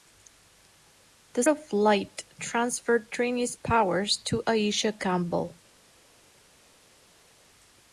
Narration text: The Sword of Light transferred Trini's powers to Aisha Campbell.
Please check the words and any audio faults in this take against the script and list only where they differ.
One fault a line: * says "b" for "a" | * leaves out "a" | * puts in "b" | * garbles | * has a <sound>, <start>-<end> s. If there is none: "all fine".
* leaves out "Sword"